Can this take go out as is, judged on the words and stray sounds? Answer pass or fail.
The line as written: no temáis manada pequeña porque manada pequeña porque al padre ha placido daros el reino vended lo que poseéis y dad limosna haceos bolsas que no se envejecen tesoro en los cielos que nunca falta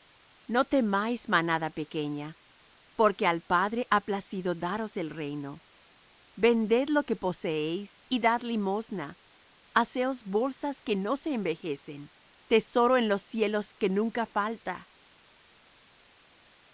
fail